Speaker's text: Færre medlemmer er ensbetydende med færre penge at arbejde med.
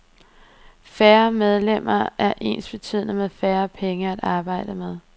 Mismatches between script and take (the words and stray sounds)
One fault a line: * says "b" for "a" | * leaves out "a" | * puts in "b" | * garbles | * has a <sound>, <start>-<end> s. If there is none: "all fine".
all fine